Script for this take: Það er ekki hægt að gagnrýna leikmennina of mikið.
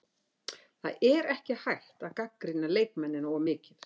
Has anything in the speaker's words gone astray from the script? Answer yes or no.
no